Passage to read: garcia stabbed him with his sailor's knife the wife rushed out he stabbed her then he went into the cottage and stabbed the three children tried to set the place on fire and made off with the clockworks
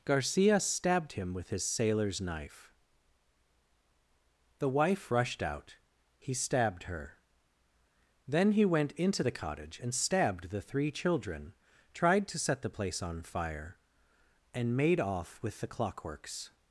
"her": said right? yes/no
yes